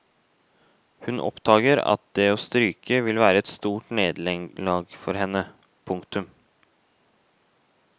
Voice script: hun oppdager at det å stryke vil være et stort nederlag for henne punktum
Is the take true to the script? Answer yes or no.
yes